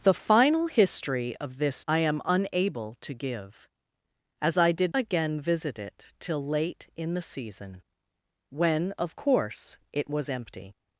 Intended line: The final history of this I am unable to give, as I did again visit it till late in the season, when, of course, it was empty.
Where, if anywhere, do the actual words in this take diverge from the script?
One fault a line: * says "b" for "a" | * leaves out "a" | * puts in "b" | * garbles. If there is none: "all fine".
all fine